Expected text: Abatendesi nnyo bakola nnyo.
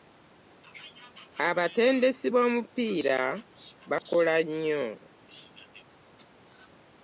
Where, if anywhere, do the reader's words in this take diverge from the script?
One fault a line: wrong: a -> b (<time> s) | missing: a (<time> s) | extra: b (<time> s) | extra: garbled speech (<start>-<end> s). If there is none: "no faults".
wrong: nnyo -> b'omupiira (2.3 s)